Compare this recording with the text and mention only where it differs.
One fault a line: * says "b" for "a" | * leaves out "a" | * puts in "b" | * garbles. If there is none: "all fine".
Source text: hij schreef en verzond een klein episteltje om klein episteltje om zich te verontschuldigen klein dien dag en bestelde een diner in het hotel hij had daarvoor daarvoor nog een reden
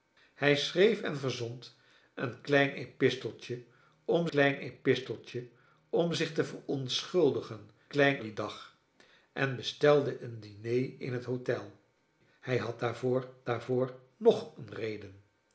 all fine